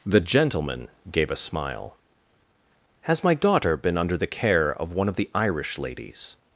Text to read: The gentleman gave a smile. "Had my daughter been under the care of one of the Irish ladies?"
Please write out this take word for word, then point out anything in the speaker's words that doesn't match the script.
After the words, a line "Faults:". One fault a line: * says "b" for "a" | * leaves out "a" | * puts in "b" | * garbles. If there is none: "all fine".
The gentleman gave a smile. "Has my daughter been under the care of one of the Irish ladies?"
Faults:
* says "Has" for "Had"